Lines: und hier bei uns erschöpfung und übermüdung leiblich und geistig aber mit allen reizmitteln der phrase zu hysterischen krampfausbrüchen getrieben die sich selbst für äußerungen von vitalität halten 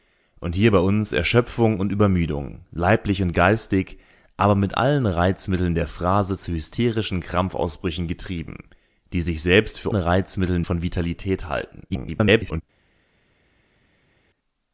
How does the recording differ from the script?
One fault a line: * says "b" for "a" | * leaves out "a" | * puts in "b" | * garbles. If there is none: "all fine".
* says "reizmitteln" for "äußerungen"
* garbles